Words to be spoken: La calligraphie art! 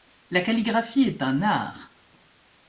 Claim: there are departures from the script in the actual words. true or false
true